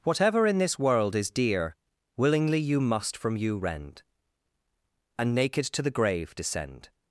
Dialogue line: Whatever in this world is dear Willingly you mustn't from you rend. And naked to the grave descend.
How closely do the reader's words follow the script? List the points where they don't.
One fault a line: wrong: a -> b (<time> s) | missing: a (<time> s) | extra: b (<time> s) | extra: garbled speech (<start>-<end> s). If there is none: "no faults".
wrong: mustn't -> must (2.8 s)